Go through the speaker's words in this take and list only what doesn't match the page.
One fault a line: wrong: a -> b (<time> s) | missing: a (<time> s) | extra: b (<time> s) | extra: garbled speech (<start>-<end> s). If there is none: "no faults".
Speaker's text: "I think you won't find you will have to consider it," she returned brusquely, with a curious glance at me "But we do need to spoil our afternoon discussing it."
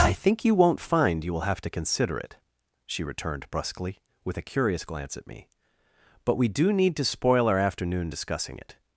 no faults